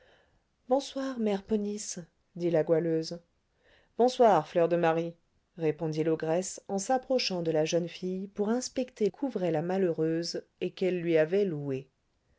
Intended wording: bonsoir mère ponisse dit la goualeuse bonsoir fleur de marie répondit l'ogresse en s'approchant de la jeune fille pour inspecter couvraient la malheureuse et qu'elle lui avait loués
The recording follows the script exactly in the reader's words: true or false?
true